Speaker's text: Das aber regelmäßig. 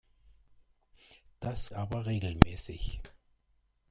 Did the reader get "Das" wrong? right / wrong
right